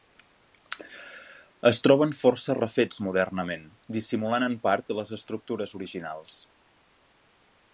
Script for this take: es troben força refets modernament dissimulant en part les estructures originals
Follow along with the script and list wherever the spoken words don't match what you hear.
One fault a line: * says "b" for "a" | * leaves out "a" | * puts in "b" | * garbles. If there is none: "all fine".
all fine